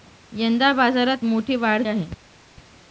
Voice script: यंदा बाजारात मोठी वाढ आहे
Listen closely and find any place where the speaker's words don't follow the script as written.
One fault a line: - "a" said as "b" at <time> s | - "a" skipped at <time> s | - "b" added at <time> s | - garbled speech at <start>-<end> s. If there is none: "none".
none